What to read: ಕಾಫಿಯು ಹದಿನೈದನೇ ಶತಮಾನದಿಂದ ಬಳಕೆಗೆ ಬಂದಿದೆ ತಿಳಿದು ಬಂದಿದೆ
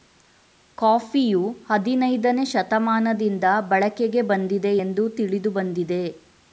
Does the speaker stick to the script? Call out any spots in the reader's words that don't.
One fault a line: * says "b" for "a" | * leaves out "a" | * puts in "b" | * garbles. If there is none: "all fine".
* puts in "ಎಂದು"